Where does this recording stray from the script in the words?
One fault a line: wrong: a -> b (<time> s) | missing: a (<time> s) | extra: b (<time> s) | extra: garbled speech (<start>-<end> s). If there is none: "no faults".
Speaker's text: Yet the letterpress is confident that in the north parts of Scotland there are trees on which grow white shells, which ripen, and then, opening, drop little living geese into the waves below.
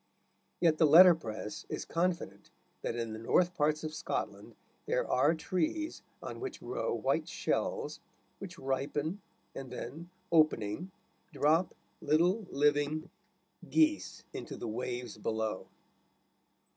no faults